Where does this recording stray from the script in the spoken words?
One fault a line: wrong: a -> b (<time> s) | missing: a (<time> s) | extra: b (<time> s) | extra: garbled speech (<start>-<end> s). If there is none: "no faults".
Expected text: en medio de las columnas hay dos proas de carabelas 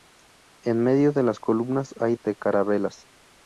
missing: dos proas (2.1 s)